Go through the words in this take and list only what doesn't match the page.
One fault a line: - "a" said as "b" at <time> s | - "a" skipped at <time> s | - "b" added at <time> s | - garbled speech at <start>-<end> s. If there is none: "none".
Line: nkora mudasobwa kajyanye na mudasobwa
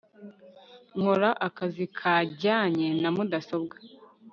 - "mudasobwa" said as "akazi" at 1.5 s